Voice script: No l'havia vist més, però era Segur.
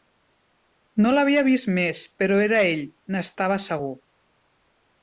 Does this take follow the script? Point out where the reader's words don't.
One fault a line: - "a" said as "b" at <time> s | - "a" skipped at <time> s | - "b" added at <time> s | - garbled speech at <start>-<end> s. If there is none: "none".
- "Ell n'estava" added at 2.7 s